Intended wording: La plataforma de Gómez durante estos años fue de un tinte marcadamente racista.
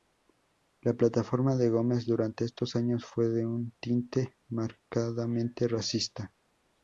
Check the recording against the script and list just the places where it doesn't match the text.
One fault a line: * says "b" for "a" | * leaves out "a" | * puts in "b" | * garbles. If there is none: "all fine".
all fine